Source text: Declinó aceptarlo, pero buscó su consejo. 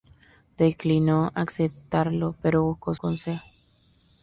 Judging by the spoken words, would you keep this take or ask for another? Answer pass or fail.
fail